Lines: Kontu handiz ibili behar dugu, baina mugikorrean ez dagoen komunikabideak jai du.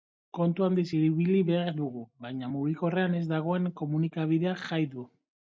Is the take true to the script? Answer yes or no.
yes